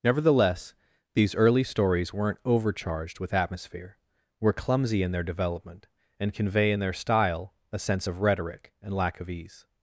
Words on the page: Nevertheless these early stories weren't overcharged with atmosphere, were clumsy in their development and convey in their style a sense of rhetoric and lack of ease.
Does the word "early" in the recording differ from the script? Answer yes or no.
no